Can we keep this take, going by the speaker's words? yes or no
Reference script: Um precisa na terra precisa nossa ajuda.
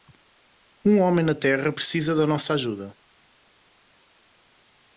no